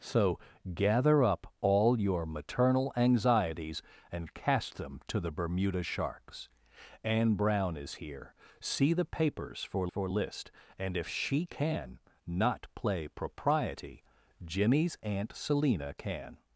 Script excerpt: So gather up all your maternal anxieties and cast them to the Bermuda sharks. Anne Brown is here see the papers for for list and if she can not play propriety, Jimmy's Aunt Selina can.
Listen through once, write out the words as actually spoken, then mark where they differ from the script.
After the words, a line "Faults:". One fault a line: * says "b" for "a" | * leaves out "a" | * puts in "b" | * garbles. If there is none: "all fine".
So gather up all your maternal anxieties and cast them to the Bermuda sharks. Anne Brown is here see the papers for for list and if she can not play propriety, Jimmy's Aunt Selina can.
Faults:
all fine